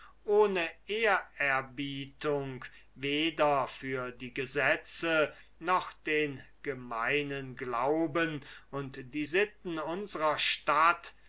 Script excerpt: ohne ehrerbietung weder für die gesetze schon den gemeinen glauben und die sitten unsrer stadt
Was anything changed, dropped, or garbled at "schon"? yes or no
yes